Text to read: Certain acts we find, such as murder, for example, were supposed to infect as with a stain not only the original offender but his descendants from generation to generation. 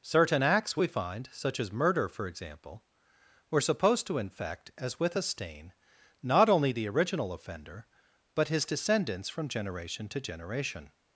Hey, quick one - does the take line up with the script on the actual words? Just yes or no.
yes